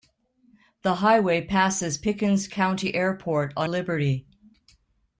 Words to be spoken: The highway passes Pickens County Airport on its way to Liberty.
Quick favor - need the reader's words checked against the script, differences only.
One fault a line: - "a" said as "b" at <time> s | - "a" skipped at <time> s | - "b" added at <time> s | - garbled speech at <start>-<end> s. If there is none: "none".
- "its way to" skipped at 3.7 s